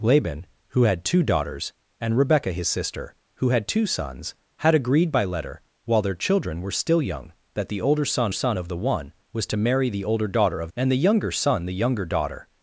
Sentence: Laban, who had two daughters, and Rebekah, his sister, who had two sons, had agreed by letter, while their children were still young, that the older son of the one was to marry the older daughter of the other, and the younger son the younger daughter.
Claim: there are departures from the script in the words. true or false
true